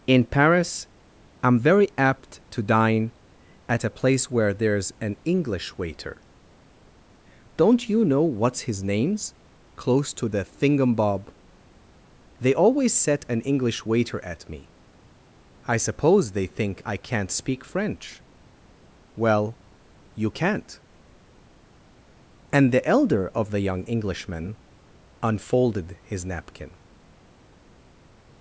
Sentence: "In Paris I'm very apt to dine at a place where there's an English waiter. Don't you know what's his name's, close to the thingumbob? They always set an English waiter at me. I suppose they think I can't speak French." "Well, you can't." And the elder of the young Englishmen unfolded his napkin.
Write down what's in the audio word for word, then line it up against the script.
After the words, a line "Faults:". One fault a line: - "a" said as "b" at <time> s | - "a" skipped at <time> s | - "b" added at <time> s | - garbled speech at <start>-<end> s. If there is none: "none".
"In Paris I'm very apt to dine at a place where there's an English waiter. Don't you know what's his name's, close to the thingumbob? They always set an English waiter at me. I suppose they think I can't speak French." "Well, you can't." And the elder of the young Englishmen unfolded his napkin.
Faults:
none